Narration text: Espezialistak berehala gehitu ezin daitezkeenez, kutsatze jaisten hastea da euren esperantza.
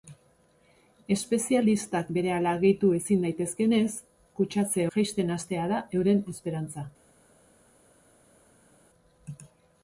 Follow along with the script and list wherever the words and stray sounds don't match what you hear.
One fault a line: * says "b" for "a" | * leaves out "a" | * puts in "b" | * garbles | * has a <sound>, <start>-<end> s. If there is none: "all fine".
all fine